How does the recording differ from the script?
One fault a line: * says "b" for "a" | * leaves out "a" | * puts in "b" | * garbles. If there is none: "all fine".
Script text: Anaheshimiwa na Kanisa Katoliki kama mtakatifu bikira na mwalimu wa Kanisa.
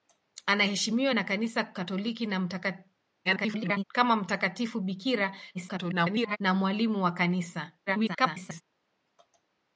* garbles
* garbles
* garbles